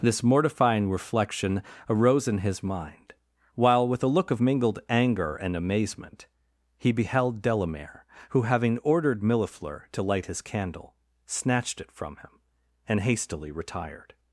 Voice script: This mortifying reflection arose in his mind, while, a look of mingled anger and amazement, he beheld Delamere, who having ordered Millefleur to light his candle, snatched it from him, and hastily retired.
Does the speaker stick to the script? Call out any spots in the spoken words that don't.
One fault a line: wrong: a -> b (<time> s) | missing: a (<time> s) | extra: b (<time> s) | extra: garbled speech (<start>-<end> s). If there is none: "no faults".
extra: with (3.9 s)